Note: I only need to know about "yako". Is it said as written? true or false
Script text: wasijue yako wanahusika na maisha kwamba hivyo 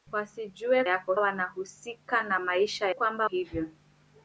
true